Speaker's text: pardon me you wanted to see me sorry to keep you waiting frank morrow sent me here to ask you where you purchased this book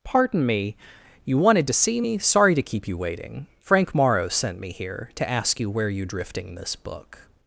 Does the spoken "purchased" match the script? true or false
false